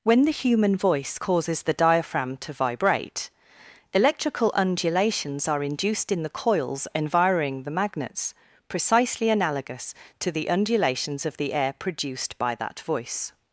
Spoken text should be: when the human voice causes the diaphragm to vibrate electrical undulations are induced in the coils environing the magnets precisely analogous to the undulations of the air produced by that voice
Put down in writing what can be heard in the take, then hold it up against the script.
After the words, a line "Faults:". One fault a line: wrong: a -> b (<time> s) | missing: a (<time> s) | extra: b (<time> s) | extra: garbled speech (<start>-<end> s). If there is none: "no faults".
when the human voice causes the diaphragm to vibrate electrical undulations are induced in the coils environing the magnets precisely analogous to the undulations of the air produced by that voice
Faults:
no faults